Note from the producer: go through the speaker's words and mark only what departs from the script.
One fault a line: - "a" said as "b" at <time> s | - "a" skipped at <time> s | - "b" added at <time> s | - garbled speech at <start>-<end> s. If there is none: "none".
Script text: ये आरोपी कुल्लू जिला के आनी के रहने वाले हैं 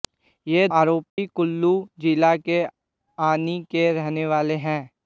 none